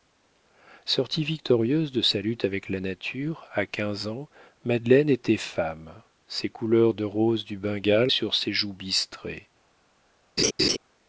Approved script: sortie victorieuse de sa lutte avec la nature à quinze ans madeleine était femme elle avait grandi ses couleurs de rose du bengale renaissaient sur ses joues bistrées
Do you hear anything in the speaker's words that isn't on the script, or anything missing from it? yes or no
yes